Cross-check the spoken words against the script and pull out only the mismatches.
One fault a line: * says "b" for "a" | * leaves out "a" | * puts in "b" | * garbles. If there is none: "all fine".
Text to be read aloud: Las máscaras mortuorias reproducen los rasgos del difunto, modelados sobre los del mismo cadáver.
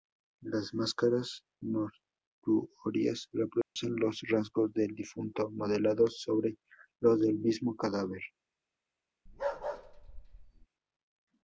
all fine